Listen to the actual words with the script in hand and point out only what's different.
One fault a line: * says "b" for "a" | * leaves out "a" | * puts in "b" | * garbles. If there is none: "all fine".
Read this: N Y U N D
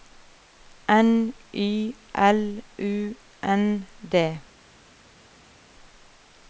* puts in "L"